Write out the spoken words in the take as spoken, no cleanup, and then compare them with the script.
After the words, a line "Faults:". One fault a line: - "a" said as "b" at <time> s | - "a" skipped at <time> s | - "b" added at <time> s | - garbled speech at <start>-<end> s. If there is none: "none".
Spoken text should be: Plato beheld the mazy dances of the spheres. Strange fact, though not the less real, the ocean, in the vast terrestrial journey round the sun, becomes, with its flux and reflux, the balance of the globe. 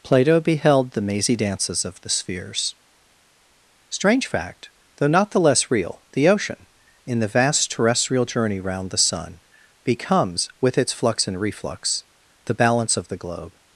Plato beheld the mazy dances of the spheres. Strange fact, though not the less real, the ocean, in the vast terrestrial journey round the sun, becomes, with its flux and reflux, the balance of the globe.
Faults:
none